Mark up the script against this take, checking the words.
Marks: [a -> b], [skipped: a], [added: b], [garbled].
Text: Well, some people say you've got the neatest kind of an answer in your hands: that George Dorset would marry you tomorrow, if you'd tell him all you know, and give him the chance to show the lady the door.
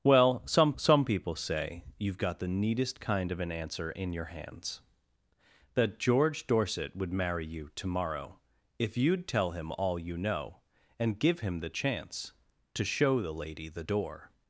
Well, some [added: some] people say you've got the neatest kind of an answer in your hands: that George Dorset would marry you tomorrow, if you'd tell him all you know, and give him the chance to show the lady the door.